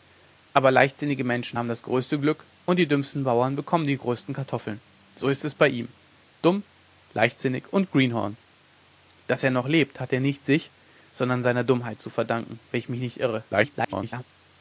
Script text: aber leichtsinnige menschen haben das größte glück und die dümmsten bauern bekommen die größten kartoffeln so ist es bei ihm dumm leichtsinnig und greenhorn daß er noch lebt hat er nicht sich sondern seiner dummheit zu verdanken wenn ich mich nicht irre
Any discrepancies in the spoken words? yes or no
yes